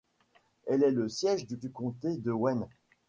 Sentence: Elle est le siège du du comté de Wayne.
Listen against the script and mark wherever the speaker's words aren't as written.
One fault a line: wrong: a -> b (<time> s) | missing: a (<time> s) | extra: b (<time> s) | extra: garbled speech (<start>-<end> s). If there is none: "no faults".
no faults